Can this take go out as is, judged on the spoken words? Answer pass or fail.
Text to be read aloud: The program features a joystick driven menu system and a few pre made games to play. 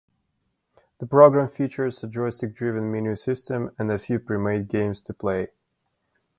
pass